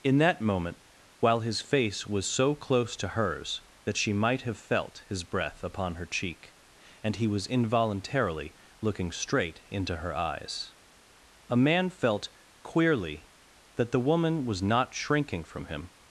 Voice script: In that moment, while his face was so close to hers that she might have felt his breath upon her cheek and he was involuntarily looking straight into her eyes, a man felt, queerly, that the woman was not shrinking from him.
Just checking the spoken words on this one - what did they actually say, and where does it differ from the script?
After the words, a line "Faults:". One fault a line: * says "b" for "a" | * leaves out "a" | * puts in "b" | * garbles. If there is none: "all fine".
In that moment, while his face was so close to hers that she might have felt his breath upon her cheek and he was involuntarily looking straight into her eyes, a man felt, queerly, that the woman was not shrinking from him.
Faults:
all fine